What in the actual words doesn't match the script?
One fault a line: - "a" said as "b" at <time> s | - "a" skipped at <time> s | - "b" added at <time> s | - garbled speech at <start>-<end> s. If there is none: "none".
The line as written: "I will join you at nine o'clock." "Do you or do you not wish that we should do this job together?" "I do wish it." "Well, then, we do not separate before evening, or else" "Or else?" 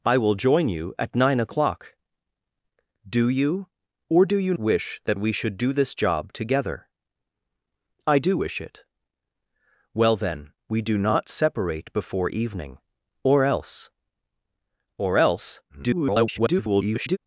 - "not" skipped at 4.5 s
- garbled speech at 15.7-17.2 s